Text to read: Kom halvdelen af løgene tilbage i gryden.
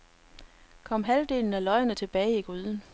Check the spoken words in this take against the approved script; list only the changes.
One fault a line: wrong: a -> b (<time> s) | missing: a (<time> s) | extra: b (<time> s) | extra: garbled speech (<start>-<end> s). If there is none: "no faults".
no faults